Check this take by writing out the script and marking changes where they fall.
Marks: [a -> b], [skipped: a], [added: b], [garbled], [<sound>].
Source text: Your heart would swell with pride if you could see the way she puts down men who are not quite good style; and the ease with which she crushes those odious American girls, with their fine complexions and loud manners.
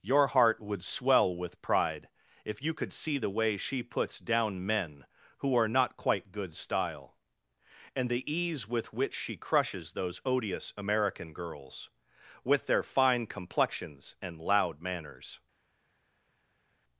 Your heart would swell with pride if you could see the way she puts down men who are not quite good style; and the ease with which she crushes those odious American girls, with their fine complexions and loud manners.